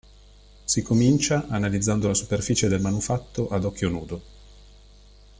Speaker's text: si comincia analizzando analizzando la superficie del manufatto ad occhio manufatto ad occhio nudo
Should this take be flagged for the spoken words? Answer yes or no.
yes